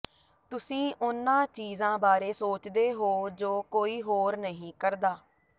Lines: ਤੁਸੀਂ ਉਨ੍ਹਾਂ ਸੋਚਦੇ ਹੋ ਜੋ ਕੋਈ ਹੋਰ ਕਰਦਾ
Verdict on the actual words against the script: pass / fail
fail